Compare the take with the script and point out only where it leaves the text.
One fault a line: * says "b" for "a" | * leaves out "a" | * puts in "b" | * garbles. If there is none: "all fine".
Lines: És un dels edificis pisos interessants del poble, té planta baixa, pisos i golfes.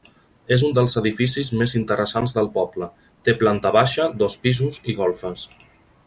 * says "més" for "pisos"
* puts in "dos"